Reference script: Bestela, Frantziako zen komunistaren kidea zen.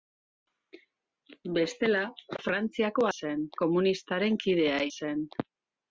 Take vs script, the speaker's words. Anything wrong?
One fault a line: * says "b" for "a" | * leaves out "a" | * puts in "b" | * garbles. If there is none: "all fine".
all fine